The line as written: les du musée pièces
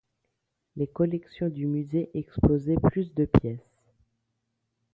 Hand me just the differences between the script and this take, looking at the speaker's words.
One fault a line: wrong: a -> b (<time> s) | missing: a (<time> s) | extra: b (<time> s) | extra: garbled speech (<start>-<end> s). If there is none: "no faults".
extra: collections (0.9 s)
extra: exposaient plus de (2.1 s)